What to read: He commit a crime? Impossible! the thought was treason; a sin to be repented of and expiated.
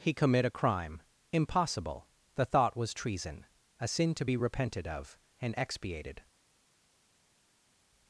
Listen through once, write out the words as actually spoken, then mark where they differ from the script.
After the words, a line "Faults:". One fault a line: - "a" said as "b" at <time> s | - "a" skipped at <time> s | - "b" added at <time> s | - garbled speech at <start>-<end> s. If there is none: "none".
He commit a crime? Impossible! the thought was treason; a sin to be repented of and expiated.
Faults:
none